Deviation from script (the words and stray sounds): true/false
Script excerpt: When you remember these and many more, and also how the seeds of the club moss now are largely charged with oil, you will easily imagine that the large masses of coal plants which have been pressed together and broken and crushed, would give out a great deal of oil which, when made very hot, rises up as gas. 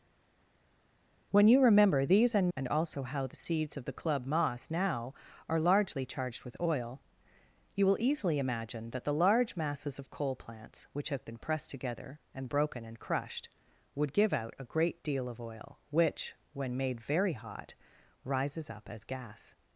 true